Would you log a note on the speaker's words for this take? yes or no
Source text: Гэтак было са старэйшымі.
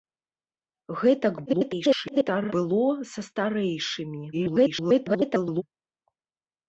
yes